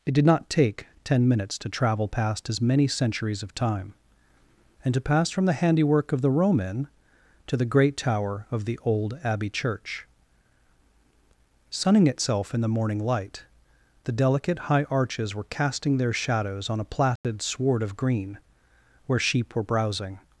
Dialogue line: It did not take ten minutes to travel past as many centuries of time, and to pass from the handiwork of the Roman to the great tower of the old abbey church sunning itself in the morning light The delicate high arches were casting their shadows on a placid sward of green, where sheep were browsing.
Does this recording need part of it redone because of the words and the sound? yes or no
yes